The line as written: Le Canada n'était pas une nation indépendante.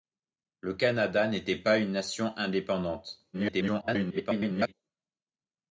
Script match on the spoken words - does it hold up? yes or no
no